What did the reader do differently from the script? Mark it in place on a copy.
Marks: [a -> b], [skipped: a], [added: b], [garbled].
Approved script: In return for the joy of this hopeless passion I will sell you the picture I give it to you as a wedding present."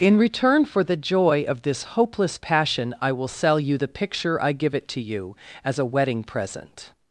In return for the joy of this hopeless passion I will sell you the picture I give it to you as a wedding present."